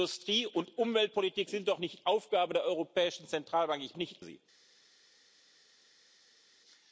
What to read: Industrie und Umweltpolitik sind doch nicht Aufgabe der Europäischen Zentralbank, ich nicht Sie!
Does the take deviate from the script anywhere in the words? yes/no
no